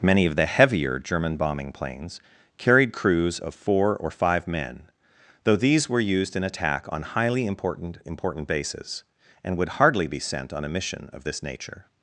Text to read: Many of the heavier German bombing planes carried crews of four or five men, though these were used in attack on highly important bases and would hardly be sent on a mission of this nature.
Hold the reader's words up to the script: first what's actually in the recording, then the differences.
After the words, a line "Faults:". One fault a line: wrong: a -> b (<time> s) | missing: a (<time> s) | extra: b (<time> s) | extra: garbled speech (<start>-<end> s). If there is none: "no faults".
Many of the heavier German bombing planes carried crews of four or five men, though these were used in attack on highly important important bases and would hardly be sent on a mission of this nature.
Faults:
extra: important (8.0 s)